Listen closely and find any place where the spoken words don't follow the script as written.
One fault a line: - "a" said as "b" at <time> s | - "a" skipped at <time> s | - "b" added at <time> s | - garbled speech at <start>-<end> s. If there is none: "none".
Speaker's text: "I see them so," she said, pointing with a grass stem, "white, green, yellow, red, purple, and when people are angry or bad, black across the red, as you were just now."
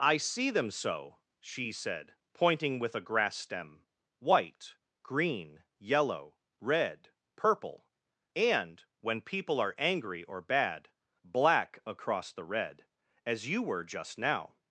none